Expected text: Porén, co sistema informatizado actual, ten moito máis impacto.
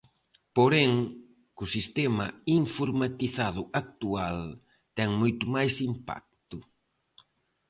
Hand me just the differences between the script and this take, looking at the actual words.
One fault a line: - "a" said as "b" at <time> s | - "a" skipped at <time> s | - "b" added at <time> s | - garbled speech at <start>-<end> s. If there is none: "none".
none